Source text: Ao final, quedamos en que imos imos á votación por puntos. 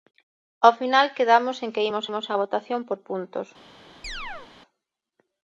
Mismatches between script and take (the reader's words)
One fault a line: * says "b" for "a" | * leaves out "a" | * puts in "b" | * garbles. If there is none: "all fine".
all fine